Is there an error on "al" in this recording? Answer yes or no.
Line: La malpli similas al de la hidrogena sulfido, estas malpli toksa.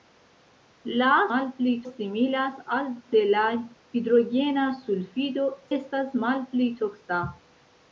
no